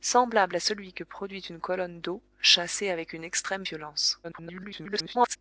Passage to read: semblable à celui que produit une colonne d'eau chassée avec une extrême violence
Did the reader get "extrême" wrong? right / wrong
right